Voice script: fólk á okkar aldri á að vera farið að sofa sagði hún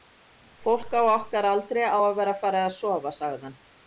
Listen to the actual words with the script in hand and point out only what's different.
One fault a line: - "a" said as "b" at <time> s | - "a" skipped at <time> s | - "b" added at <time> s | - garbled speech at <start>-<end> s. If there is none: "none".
- "hún" said as "hann" at 3.5 s